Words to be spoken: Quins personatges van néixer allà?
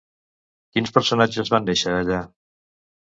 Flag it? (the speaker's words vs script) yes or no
no